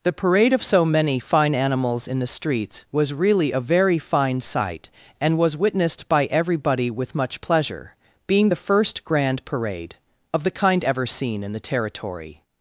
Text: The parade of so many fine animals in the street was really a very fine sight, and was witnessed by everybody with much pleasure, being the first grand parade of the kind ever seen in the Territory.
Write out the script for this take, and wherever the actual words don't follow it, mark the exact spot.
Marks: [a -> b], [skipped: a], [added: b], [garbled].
The parade of so many fine animals in the [street -> streets] was really a very fine sight, and was witnessed by everybody with much pleasure, being the first grand parade of the kind ever seen in the Territory.